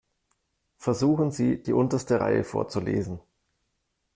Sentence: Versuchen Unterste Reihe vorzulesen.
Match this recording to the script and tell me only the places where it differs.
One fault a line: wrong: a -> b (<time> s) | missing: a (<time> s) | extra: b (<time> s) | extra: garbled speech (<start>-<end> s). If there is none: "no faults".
extra: Sie die (1.3 s)